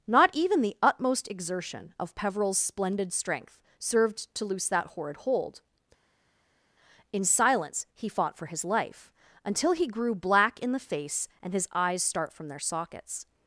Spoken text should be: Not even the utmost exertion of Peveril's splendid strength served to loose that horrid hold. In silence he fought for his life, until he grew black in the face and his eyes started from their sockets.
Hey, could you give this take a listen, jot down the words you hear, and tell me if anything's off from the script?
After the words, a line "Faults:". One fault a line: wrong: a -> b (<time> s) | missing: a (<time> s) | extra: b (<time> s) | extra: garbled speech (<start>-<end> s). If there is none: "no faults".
Not even the utmost exertion of Peveril's splendid strength served to loose that horrid hold. In silence he fought for his life, until he grew black in the face and his eyes start from their sockets.
Faults:
wrong: started -> start (12.0 s)